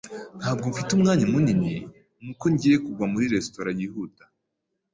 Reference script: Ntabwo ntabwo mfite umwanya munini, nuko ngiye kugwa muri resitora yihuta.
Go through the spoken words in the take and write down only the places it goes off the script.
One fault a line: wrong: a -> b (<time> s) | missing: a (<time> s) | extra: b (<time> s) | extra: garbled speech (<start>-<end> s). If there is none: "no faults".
missing: ntabwo (0.7 s)